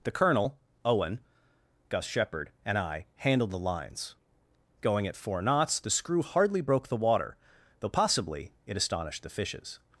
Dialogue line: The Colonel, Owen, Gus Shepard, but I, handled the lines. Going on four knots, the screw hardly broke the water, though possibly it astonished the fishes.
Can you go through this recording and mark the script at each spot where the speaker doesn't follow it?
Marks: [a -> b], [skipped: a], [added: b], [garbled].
The Colonel, Owen, Gus Shepard, [but -> and] I, handled the lines. Going [on -> at] four knots, the screw hardly broke the water, though possibly it astonished the fishes.